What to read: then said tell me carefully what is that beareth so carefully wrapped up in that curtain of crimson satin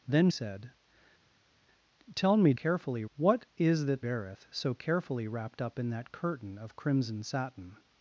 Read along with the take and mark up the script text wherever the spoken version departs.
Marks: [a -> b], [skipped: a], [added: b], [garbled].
then said tell me carefully what is that beareth so carefully wrapped up in that curtain of crimson satin